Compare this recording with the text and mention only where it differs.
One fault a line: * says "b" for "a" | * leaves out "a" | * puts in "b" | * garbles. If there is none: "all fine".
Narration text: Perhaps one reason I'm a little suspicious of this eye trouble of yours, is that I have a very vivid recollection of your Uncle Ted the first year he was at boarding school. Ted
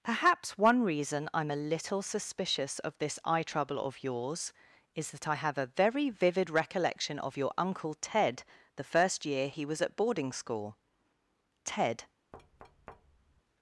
all fine